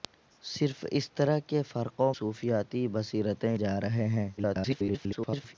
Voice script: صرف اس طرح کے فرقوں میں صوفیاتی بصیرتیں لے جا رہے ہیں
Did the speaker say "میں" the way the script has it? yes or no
no